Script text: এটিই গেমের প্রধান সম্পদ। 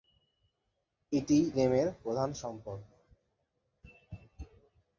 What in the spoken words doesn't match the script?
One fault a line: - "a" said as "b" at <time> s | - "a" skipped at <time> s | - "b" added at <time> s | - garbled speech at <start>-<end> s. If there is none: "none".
none